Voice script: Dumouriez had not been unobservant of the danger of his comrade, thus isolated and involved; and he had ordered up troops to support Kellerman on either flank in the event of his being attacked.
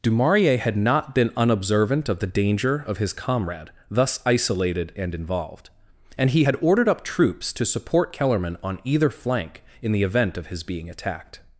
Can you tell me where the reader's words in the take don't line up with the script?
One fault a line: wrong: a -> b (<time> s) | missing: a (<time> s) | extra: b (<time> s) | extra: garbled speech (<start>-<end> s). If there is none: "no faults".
no faults